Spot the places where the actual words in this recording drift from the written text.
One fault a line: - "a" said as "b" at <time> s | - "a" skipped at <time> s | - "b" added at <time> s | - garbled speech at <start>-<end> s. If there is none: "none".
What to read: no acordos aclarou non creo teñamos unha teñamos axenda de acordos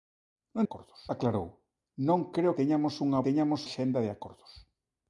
none